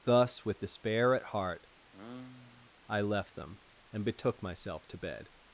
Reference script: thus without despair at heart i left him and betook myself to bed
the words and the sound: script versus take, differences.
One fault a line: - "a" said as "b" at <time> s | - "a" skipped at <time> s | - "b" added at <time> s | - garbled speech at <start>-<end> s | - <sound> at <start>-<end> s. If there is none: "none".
- "without" said as "with" at 0.4 s
- sigh at 1.9-2.7 s
- "him" said as "them" at 3.3 s